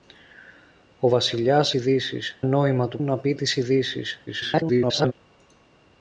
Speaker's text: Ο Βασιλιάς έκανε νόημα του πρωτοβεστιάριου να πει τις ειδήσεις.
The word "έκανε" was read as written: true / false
false